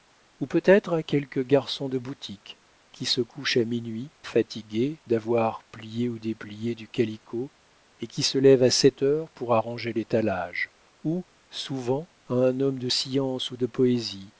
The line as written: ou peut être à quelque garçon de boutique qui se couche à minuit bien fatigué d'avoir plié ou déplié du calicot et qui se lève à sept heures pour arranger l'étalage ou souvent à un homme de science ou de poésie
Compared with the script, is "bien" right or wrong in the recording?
wrong